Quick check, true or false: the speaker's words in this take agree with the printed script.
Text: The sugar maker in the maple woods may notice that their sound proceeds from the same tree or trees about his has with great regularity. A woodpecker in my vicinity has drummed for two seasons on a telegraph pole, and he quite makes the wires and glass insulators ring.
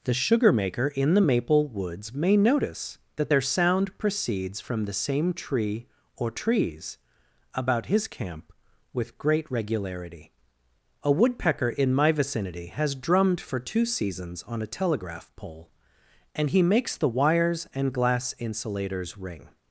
false